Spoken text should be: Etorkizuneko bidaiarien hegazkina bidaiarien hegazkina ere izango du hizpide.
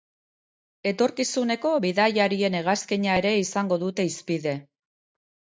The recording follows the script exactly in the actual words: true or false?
false